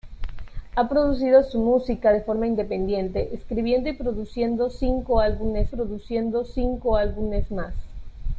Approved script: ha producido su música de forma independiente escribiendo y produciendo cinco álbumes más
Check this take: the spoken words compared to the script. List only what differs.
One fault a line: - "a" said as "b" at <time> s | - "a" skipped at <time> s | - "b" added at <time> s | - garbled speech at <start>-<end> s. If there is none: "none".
- "produciendo cinco álbumes" added at 5.7 s